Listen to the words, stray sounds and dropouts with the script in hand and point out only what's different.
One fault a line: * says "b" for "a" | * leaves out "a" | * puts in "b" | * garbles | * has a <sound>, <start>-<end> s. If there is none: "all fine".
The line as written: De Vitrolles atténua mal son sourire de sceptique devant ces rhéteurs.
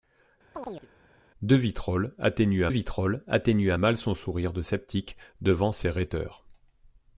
* has a chirp, 0.5-0.9 s
* puts in "Vitrolles atténua"